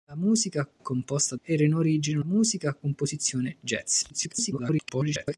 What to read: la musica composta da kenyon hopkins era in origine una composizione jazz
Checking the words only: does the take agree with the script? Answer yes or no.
no